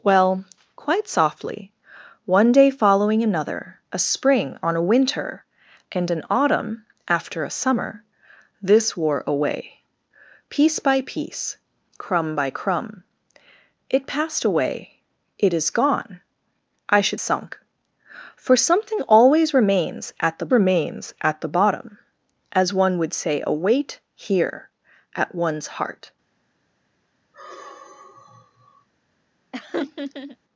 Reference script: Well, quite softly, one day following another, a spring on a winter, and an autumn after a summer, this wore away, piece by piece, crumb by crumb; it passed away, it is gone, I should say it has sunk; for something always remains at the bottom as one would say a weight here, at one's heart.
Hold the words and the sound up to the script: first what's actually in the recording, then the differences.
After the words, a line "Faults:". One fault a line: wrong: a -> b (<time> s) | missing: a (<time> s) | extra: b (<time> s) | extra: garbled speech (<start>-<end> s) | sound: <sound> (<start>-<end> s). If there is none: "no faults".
Well, quite softly, one day following another, a spring on a winter, and an autumn after a summer, this wore away, piece by piece, crumb by crumb; it passed away, it is gone, I should sunk; for something always remains at the remains at the bottom as one would say a weight here, at one's heart.
Faults:
missing: say it has (17.2 s)
extra: remains at the (20.5 s)
sound: sigh (27.3-28.9 s)
sound: laugh (29.5-30.4 s)